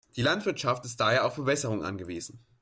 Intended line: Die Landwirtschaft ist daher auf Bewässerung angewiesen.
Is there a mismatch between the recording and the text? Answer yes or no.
no